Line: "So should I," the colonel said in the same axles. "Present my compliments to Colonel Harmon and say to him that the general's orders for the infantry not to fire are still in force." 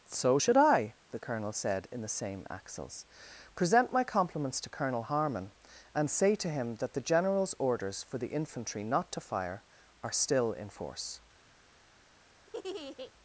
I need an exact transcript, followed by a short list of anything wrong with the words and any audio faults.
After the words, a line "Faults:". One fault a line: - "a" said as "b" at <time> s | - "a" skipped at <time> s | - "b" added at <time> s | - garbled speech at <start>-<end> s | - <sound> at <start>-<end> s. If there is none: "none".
"So should I," the colonel said in the same axles. "Present my compliments to Colonel Harmon and say to him that the general's orders for the infantry not to fire are still in force."
Faults:
- laugh at 12.5-13.1 s